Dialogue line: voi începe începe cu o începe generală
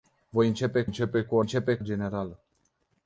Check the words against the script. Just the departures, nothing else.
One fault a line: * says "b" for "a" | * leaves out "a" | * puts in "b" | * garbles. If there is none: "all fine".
all fine